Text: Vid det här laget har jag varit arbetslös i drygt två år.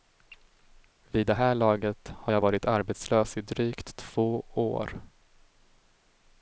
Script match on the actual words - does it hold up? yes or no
yes